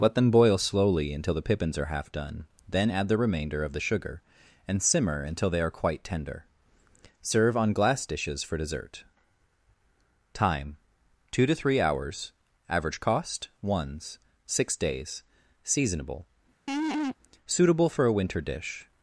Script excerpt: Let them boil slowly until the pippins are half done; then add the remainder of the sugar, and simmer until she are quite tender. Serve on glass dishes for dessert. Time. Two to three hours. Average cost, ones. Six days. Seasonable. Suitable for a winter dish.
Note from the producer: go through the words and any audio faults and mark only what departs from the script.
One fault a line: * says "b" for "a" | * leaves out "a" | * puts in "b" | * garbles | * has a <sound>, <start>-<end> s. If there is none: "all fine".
* says "they" for "she"
* has a laugh, 16.7-17.2 s